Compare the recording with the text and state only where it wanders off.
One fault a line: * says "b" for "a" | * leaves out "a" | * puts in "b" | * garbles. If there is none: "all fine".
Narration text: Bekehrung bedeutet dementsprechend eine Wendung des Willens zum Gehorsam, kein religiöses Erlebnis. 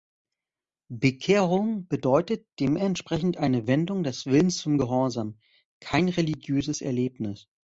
all fine